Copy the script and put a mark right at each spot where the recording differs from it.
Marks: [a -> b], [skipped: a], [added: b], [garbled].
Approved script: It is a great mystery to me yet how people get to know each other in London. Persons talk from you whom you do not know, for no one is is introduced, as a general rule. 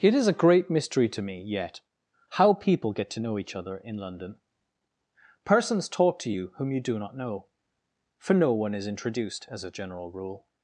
It is a great mystery to me yet how people get to know each other in London. Persons talk [from -> to] you whom you do not know, for no one is [skipped: is] introduced, as a general rule.